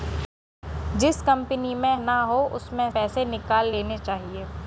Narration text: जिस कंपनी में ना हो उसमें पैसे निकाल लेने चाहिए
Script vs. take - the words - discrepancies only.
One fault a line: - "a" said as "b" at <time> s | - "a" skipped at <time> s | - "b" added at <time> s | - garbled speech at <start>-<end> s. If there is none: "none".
none